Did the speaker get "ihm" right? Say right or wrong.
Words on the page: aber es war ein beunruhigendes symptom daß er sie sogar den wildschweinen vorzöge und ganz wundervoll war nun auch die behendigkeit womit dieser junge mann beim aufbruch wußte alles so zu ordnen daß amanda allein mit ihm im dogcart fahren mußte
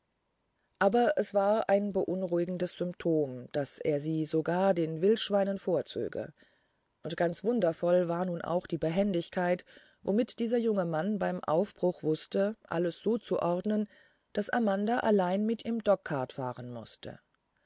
wrong